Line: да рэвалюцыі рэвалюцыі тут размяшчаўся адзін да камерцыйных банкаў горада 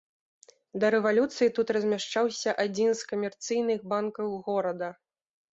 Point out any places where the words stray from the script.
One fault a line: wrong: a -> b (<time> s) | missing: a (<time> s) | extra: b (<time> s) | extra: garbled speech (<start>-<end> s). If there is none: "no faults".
missing: рэвалюцыі (1.5 s)
wrong: да -> з (3.0 s)